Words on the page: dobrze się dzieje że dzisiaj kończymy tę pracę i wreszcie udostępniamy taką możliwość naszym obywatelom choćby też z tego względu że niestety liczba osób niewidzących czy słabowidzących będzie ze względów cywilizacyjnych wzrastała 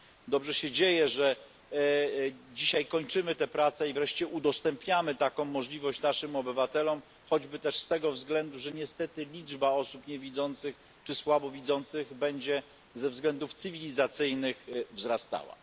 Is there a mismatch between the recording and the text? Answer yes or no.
no